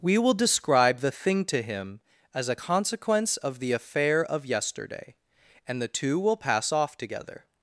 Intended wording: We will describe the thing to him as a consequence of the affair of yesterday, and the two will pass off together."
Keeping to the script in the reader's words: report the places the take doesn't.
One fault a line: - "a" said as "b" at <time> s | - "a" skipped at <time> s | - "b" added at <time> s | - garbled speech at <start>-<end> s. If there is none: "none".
none